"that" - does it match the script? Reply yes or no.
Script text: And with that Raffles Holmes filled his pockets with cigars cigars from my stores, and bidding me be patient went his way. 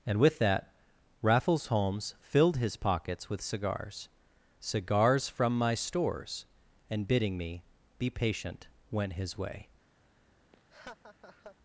yes